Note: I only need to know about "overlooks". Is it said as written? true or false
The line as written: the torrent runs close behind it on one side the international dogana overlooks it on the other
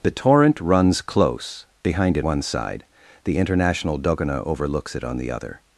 true